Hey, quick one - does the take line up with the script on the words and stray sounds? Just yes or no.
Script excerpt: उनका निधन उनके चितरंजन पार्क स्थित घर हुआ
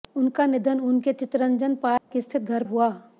no